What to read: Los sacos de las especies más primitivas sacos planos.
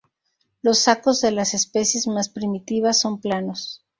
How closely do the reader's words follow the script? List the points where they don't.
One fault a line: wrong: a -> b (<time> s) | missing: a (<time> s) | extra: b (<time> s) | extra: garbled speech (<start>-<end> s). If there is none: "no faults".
wrong: sacos -> son (3.0 s)